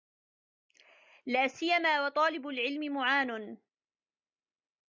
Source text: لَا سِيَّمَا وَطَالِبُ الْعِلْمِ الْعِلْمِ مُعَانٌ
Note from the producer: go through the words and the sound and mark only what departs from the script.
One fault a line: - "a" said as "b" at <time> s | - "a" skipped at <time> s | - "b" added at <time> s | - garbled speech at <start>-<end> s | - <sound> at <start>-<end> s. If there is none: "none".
- "الْعِلْمِ" skipped at 2.9 s